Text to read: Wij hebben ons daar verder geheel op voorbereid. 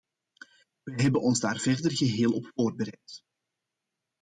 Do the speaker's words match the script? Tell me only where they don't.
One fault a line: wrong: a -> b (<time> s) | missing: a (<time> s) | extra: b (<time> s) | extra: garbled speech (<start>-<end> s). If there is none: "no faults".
no faults